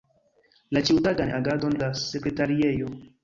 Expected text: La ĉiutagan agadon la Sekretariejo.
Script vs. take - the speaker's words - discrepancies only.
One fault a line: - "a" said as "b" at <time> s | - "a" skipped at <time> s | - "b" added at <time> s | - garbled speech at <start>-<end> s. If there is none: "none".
none